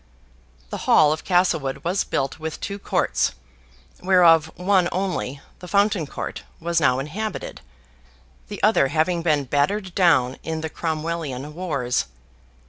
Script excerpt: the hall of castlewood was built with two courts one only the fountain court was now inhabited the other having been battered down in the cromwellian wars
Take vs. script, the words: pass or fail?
fail